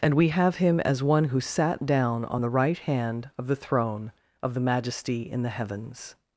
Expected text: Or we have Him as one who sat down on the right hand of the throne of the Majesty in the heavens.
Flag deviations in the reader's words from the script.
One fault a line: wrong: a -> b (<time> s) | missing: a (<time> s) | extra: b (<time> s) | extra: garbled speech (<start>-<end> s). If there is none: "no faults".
wrong: Or -> And (0.0 s)